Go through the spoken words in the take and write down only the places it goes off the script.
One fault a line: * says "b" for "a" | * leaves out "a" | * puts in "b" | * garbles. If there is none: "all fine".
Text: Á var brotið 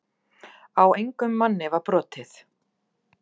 * puts in "engum manni"